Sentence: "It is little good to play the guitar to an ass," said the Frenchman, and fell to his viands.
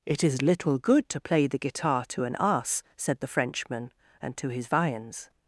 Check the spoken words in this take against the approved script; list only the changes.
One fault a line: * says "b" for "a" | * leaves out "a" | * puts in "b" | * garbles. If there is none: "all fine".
* leaves out "fell"